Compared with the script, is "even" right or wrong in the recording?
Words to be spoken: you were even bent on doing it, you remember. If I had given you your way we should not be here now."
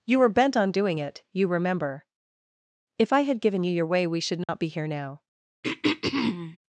wrong